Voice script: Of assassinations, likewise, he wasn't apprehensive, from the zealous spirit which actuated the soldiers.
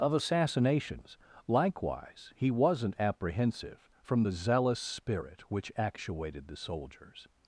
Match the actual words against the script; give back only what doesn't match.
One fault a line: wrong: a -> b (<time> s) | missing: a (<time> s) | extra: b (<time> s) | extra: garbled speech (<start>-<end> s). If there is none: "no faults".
no faults